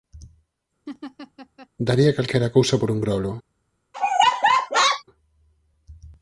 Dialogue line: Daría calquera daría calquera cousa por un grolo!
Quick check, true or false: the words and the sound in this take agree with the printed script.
false